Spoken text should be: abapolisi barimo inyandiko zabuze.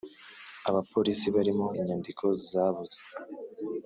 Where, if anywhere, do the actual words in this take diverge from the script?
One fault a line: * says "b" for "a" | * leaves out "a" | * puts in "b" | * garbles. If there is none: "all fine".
all fine